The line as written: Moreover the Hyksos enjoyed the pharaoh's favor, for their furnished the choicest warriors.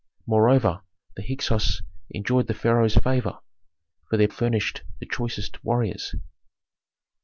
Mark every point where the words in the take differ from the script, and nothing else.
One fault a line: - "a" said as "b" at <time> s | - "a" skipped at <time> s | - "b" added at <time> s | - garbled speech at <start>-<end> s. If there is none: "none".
none